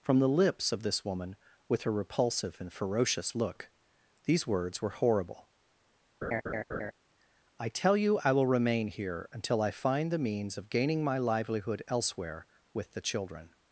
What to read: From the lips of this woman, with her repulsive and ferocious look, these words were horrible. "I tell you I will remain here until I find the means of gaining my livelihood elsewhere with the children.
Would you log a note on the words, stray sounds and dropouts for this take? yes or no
yes